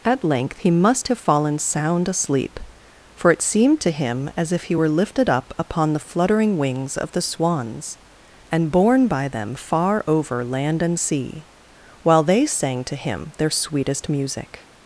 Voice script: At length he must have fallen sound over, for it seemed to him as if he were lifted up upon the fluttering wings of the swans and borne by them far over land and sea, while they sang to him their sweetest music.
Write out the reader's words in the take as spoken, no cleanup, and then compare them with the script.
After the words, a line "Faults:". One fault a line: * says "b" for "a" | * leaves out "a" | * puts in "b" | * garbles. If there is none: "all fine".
At length he must have fallen sound asleep, for it seemed to him as if he were lifted up upon the fluttering wings of the swans and borne by them far over land and sea, while they sang to him their sweetest music.
Faults:
* says "asleep" for "over"